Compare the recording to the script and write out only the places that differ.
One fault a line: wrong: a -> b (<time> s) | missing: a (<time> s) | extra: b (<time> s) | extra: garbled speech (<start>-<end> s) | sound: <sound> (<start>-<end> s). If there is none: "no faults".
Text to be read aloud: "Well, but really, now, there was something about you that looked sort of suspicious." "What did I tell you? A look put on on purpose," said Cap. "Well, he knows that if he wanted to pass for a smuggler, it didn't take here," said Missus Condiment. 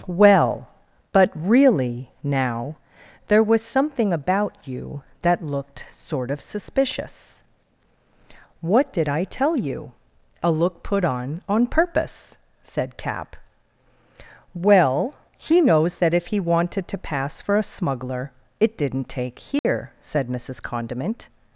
sound: dropout (19.6-19.6 s)